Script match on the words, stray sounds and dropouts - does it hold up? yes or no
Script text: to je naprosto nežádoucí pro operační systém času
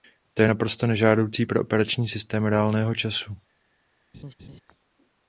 no